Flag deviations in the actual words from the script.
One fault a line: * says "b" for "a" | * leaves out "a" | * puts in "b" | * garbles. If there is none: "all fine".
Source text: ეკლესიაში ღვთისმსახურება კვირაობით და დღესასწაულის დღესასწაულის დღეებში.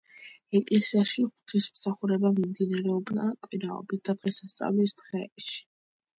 * puts in "მიმდინარეობდა"
* leaves out "დღესასწაულის"